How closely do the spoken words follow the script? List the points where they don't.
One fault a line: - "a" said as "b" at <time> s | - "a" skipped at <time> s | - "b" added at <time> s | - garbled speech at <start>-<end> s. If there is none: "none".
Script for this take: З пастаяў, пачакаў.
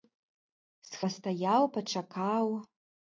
none